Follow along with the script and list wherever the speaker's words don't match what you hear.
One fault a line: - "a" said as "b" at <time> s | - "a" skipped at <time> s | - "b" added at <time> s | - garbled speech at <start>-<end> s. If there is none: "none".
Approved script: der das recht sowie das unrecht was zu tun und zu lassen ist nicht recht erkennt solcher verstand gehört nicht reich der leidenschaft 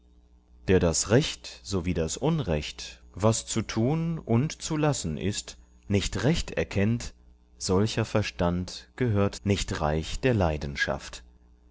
none